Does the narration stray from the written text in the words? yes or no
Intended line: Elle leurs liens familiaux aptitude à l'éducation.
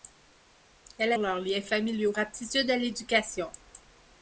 no